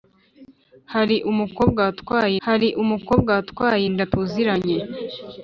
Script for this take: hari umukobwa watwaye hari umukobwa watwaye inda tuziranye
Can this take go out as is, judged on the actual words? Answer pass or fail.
pass